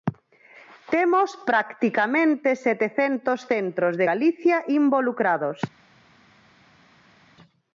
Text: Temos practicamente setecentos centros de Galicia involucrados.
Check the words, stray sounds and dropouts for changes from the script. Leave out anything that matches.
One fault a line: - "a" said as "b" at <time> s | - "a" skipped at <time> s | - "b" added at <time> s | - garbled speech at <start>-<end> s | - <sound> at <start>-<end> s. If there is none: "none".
none